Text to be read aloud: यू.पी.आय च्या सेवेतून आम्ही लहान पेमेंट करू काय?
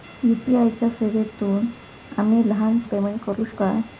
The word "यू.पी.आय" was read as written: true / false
true